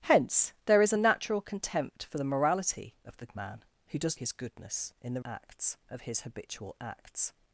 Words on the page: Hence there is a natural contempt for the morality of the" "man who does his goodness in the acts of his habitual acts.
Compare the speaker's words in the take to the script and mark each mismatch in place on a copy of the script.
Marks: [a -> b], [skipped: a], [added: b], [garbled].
Hence there is a natural contempt for the morality of the" "man who does his goodness in the acts of his habitual acts.